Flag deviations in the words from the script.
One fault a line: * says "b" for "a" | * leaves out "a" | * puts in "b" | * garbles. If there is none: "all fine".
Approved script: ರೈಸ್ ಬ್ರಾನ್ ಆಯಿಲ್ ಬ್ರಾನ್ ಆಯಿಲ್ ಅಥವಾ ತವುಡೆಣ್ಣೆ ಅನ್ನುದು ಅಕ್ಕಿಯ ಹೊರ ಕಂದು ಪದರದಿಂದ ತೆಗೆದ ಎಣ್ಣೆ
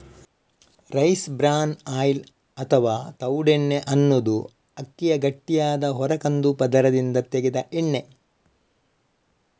* leaves out "ಬ್ರಾನ್ ಆಯಿಲ್"
* puts in "ಗಟ್ಟಿಯಾದ"